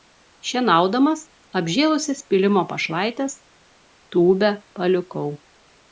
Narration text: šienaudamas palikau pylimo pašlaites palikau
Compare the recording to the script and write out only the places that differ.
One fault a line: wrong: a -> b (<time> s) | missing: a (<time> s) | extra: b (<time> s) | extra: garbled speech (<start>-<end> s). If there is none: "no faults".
wrong: palikau -> apžėlusias (1.6 s)
extra: tūbę (4.2 s)